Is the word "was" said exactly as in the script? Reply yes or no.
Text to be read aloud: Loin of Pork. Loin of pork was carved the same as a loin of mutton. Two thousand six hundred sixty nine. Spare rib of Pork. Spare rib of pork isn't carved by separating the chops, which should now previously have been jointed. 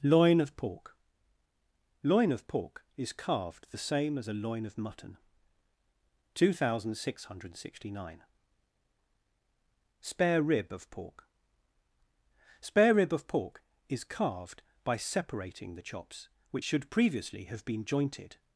no